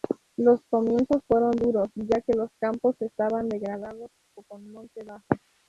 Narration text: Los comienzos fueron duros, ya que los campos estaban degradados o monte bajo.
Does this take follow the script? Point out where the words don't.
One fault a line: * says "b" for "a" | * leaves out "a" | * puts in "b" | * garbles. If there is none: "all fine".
* puts in "con"